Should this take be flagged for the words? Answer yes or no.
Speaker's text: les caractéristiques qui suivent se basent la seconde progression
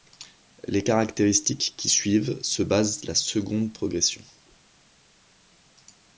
no